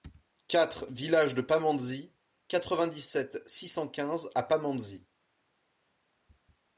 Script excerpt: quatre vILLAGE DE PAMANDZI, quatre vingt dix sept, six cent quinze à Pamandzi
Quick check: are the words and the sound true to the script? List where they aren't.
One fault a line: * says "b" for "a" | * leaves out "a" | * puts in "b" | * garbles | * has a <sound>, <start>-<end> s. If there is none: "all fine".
all fine